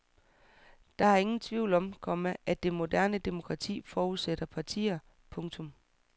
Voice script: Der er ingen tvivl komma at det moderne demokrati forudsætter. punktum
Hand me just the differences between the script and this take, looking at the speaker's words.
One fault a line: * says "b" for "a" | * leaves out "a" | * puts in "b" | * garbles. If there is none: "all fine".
* puts in "om"
* puts in "partier"